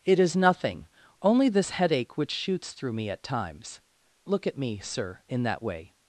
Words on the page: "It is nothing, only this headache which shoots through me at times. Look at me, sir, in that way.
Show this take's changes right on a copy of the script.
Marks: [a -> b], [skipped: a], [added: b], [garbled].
"It is nothing, only this headache which shoots through me at times. Look at me, sir, in that way.